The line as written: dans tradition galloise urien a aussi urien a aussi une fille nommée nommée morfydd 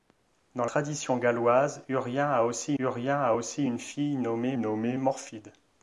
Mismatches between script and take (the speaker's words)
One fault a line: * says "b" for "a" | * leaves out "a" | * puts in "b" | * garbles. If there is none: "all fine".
all fine